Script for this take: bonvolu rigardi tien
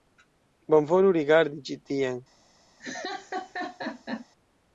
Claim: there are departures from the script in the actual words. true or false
true